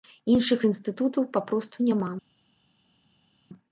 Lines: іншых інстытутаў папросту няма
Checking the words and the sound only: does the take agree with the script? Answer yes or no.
yes